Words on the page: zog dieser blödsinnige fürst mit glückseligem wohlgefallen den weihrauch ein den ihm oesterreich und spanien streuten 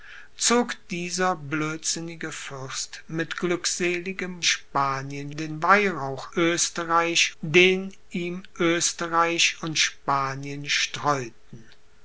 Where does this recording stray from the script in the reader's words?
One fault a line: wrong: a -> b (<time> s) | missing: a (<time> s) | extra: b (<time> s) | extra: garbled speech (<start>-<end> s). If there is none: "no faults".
wrong: wohlgefallen -> spanien (4.4 s)
wrong: ein -> oesterreich (6.3 s)